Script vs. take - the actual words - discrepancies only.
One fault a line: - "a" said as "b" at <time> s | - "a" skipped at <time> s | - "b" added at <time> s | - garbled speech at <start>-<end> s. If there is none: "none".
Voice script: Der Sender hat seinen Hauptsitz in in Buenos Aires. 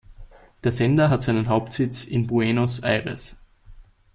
- "in" skipped at 2.3 s